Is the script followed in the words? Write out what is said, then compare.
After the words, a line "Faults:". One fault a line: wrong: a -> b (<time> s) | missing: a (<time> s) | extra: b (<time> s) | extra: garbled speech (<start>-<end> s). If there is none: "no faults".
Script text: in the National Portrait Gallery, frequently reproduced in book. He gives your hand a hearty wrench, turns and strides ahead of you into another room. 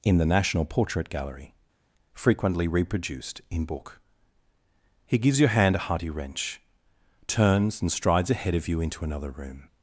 in the National Portrait Gallery, frequently reproduced in book. He gives your hand a hearty wrench, turns and strides ahead of you into another room.
Faults:
no faults